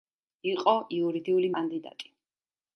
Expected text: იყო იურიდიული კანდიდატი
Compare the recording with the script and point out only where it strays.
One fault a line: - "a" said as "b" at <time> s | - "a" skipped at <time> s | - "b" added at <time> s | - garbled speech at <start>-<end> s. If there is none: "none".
none